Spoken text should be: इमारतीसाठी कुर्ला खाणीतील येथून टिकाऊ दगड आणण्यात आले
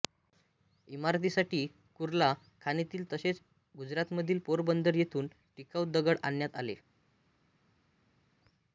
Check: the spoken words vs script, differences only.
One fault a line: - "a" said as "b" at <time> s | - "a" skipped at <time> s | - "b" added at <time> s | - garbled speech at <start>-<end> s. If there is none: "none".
- "तसेच गुजरातमधील पोरबंदर" added at 3.1 s